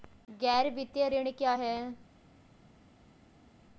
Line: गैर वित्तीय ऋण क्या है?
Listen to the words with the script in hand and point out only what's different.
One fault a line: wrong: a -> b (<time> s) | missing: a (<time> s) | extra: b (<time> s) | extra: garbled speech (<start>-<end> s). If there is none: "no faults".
no faults